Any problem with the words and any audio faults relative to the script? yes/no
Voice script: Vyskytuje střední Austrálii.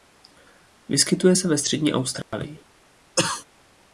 yes